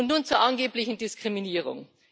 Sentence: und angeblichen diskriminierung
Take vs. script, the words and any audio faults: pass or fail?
fail